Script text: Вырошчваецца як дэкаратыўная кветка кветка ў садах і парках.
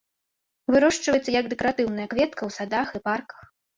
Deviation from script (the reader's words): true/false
true